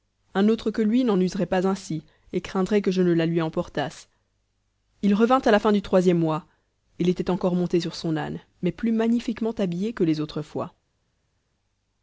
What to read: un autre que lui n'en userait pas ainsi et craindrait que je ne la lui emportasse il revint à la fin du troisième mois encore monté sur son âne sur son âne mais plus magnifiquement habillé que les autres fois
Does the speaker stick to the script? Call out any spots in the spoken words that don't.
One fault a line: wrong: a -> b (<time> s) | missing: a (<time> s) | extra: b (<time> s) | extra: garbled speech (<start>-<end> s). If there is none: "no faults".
extra: il était (7.0 s)
missing: sur son âne (8.4 s)